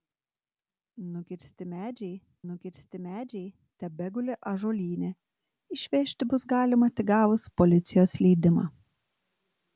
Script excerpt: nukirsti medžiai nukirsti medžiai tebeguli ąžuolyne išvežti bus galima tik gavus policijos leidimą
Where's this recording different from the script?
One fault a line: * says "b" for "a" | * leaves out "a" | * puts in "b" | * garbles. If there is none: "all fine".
all fine